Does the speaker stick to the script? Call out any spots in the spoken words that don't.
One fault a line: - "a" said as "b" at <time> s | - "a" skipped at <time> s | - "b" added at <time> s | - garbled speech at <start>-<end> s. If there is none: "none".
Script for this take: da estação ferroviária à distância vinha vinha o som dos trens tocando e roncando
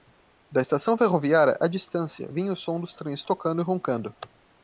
- "vinha" skipped at 2.5 s